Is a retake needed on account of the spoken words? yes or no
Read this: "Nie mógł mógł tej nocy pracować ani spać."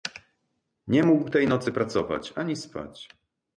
yes